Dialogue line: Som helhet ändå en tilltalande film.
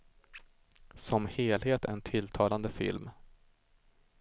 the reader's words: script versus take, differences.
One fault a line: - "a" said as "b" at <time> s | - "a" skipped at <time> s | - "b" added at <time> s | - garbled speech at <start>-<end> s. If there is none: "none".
- "ändå" skipped at 1.9 s